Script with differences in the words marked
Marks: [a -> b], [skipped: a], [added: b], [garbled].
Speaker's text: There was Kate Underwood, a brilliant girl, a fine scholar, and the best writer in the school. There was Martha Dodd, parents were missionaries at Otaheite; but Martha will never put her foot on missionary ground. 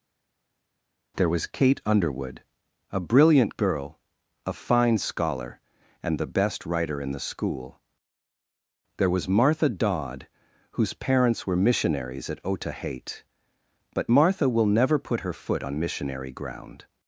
There was Kate Underwood, a brilliant girl, a fine scholar, and the best writer in the school. There was Martha Dodd, [added: whose] parents were missionaries at Otaheite; but Martha will never put her foot on missionary ground.